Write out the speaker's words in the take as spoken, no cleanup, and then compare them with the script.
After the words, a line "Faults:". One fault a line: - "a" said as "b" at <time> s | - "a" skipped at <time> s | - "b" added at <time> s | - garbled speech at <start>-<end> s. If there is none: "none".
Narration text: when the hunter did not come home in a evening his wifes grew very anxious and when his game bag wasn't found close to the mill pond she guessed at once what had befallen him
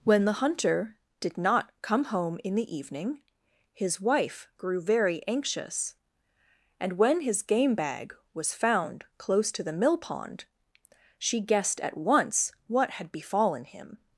when the hunter did not come home in the evening his wife grew very anxious and when his game bag was found close to the mill pond she guessed at once what had befallen him
Faults:
- "a" said as "the" at 2.5 s
- "wifes" said as "wife" at 4.0 s
- "wasn't" said as "was" at 8.3 s